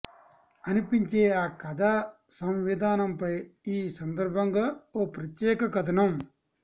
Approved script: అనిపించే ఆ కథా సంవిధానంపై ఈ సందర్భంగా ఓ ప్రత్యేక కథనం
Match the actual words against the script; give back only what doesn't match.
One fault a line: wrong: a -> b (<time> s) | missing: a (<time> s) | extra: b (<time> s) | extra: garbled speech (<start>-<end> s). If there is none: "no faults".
no faults